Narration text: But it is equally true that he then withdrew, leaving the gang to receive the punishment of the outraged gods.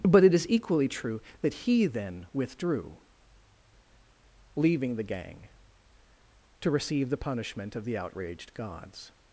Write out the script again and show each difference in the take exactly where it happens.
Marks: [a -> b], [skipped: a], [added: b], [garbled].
But it is equally true that he then withdrew, leaving the gang to receive the punishment of the outraged gods.